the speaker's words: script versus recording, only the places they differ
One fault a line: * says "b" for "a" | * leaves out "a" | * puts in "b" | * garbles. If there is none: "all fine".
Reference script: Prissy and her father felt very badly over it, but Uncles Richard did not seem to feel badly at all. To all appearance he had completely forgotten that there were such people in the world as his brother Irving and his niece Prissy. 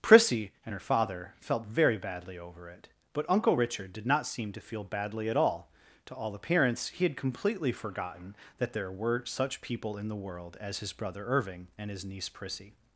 * says "Uncle" for "Uncles"